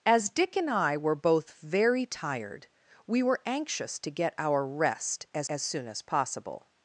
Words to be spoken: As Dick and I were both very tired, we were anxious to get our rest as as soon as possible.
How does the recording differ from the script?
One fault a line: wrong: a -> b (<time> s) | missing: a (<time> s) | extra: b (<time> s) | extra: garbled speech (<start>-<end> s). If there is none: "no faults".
no faults